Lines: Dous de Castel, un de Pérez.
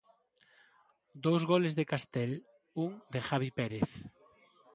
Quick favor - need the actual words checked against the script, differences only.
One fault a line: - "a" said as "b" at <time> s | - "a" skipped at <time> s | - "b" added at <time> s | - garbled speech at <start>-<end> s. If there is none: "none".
- "goles" added at 1.5 s
- "Javi" added at 3.3 s